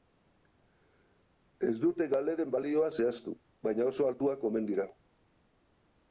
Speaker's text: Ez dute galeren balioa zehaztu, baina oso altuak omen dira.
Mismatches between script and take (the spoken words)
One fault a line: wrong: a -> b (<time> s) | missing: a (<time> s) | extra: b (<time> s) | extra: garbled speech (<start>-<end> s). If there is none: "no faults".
no faults